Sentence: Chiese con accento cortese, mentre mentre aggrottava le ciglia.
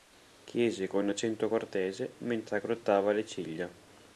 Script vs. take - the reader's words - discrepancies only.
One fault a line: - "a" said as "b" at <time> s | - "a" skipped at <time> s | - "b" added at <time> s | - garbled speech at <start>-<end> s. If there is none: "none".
- "mentre" skipped at 2.6 s